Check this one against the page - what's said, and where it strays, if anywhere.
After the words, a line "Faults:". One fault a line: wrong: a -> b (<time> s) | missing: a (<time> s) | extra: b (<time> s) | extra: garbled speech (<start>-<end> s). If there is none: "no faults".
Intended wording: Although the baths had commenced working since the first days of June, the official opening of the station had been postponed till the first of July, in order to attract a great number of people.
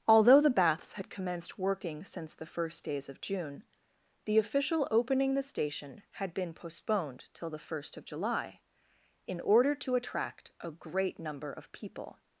Although the baths had commenced working since the first days of June, the official opening the station had been postponed till the first of July, in order to attract a great number of people.
Faults:
missing: of (5.3 s)